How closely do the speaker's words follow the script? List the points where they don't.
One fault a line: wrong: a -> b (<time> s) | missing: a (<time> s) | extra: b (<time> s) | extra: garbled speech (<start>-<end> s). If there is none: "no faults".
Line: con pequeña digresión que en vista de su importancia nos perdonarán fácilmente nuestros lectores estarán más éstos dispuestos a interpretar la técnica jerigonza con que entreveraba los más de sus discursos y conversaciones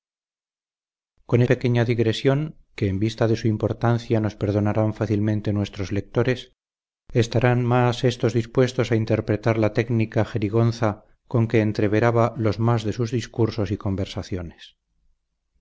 no faults